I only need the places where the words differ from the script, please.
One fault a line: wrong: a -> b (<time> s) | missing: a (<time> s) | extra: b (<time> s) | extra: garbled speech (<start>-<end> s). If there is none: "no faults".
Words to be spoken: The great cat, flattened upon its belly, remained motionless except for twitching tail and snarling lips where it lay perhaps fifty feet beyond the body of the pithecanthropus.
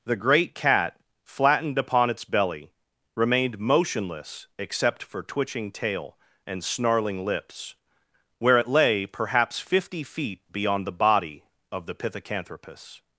no faults